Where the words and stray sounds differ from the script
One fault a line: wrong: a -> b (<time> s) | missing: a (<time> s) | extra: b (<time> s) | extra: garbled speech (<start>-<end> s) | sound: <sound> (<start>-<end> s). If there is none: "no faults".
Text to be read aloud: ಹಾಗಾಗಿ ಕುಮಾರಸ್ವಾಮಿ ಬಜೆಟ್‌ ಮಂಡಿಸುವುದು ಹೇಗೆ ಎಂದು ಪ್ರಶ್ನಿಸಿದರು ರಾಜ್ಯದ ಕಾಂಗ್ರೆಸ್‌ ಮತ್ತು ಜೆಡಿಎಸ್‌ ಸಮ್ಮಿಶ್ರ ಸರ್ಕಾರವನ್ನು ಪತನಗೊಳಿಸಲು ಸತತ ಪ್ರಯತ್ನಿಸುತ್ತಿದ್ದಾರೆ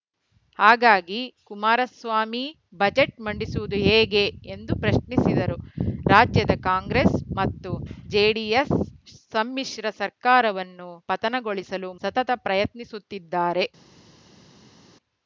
no faults